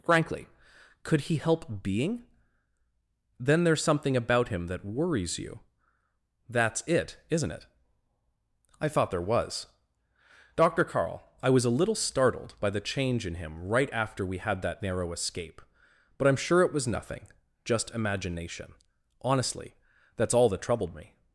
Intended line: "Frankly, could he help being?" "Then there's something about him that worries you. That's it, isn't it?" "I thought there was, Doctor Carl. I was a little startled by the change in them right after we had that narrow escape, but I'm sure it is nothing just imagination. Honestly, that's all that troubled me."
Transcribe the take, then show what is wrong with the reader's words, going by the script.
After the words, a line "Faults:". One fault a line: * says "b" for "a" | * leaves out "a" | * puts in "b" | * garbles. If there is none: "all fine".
"Frankly, could he help being?" "Then there's something about him that worries you. That's it, isn't it?" "I thought there was, Doctor Carl. I was a little startled by the change in him right after we had that narrow escape, but I'm sure it was nothing just imagination. Honestly, that's all that troubled me."
Faults:
* says "him" for "them"
* says "was" for "is"